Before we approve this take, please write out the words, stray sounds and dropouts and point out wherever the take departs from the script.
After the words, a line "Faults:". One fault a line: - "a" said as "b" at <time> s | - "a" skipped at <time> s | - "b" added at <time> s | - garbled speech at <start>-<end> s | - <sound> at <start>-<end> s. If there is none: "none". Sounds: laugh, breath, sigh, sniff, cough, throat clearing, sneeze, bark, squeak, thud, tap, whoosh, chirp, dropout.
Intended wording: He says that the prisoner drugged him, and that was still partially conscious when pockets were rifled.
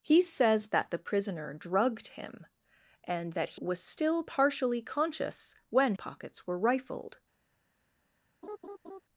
He says that the prisoner drugged him, and that was still partially conscious when pockets were rifled.
Faults:
- laugh at 8.4-9.0 s